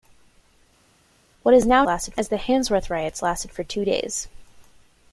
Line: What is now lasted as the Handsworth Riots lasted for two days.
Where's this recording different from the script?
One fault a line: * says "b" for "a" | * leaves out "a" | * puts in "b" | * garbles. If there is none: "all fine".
all fine